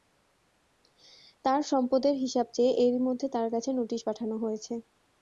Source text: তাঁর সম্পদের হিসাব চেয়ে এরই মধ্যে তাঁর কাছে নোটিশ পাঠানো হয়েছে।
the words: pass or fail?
pass